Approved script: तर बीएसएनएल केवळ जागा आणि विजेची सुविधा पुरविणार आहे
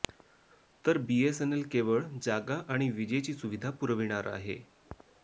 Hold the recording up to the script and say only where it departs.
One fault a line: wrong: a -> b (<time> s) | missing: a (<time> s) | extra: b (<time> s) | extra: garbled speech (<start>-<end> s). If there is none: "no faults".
no faults